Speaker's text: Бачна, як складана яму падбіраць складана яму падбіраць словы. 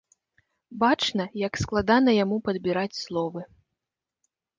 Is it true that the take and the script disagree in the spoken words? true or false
true